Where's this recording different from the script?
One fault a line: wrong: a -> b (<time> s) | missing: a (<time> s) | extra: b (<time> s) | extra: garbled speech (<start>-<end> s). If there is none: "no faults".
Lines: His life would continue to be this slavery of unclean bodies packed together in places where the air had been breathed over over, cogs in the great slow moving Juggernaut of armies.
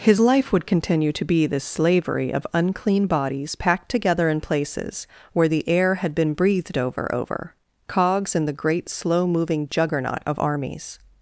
no faults